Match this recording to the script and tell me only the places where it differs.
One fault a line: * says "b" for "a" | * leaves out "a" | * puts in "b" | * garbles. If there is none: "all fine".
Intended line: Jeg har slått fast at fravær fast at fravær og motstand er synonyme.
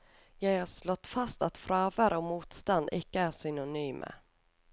* leaves out "fast at fravær"
* puts in "ikke"